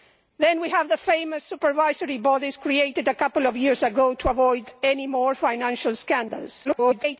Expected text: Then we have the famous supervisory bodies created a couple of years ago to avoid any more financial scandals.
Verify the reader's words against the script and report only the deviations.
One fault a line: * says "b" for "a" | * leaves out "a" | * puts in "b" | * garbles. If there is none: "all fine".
* garbles